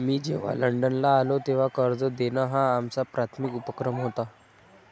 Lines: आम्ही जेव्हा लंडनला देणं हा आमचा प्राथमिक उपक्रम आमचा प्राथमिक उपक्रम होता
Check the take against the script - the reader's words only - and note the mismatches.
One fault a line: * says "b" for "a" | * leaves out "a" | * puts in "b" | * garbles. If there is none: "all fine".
* says "मी" for "आम्ही"
* says "आलो तेव्हा कर्ज देणं हा" for "देणं हा आमचा प्राथमिक उपक्रम"